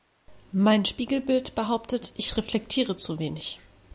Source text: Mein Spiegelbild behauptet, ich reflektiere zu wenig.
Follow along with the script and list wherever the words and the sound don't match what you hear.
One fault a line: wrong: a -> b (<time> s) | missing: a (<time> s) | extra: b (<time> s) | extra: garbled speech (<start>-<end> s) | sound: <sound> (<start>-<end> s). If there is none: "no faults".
no faults